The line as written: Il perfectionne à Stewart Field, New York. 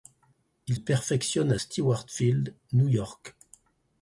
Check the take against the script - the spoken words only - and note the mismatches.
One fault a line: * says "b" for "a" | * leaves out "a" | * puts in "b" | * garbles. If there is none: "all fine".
all fine